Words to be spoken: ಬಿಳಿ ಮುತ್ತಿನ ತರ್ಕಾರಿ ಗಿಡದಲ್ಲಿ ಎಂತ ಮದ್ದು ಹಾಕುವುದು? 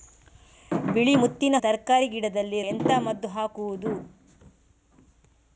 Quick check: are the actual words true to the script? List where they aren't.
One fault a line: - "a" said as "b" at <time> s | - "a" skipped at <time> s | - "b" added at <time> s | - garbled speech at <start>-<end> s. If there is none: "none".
none